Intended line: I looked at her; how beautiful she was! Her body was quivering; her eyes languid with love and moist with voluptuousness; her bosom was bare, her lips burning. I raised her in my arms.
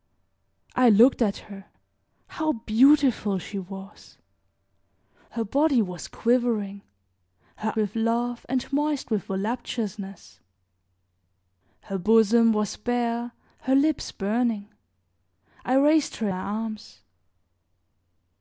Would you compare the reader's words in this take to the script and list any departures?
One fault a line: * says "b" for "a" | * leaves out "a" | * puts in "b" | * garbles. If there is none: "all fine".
* leaves out "eyes languid"
* leaves out "in"